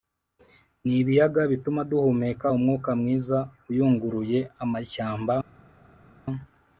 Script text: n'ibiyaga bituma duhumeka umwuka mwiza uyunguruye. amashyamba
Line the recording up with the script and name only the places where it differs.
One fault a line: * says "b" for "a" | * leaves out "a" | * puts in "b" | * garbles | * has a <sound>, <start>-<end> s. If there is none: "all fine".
all fine